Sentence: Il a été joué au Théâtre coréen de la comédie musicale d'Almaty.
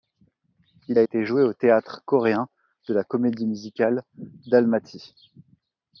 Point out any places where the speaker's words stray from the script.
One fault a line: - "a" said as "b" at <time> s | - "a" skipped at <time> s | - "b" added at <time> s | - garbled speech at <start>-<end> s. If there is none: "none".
none